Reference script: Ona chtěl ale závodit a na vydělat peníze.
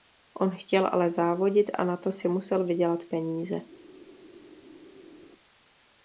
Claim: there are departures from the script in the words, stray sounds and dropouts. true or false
true